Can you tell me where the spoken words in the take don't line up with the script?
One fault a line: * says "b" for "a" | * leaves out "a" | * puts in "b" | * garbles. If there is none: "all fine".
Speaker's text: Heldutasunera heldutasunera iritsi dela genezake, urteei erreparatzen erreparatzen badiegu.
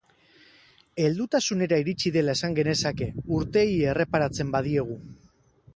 * leaves out "heldutasunera"
* puts in "esan"
* leaves out "erreparatzen"